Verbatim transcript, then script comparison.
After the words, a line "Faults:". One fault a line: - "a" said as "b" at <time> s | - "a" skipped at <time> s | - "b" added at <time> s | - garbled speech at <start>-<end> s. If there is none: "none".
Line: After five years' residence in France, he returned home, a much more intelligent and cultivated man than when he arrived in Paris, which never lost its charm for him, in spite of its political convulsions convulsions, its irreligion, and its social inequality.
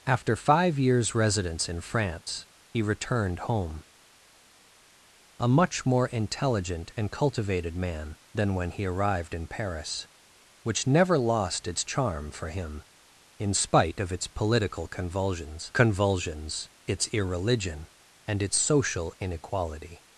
After five years' residence in France, he returned home, a much more intelligent and cultivated man than when he arrived in Paris, which never lost its charm for him, in spite of its political convulsions convulsions, its irreligion, and its social inequality.
Faults:
none